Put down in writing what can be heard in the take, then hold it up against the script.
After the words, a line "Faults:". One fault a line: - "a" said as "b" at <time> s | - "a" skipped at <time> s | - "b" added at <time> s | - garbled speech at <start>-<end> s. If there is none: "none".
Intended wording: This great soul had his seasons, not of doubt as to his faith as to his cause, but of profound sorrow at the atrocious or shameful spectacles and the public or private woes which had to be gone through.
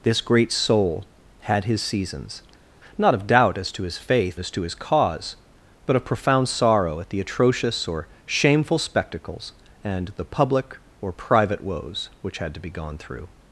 This great soul had his seasons, not of doubt as to his faith as to his cause, but of profound sorrow at the atrocious or shameful spectacles and the public or private woes which had to be gone through.
Faults:
none